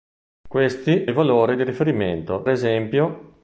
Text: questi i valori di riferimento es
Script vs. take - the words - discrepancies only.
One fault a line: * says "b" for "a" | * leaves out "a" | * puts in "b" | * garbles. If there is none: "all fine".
all fine